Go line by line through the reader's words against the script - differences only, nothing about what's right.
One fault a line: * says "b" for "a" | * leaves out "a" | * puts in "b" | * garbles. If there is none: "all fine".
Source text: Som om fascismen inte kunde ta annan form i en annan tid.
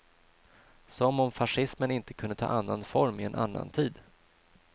all fine